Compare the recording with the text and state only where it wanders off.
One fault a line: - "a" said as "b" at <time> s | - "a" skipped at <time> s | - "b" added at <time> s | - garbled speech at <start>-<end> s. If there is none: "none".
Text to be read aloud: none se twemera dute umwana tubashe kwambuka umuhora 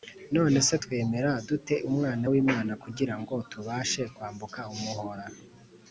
- "w'imana kugira ngo" added at 2.3 s